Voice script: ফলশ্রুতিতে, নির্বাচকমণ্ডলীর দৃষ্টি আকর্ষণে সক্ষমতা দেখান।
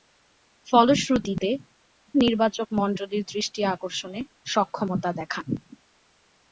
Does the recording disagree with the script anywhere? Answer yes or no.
no